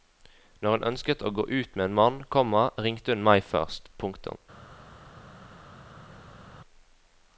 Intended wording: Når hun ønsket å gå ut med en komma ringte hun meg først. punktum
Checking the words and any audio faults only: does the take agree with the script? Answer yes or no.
no